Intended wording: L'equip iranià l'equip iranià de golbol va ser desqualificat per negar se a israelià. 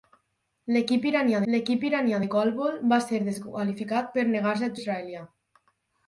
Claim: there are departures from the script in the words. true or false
false